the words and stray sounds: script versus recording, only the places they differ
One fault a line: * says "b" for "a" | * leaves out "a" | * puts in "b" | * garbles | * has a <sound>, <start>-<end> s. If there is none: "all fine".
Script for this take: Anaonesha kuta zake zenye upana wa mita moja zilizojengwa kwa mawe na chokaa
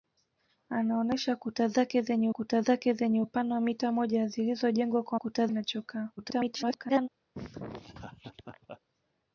* puts in "kuta zake zenye"
* says "kuta" for "mawe"
* garbles
* has a laugh, 7.3-8.8 s